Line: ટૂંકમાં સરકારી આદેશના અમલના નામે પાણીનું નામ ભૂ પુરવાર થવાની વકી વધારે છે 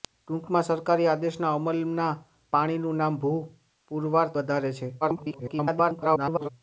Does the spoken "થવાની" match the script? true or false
false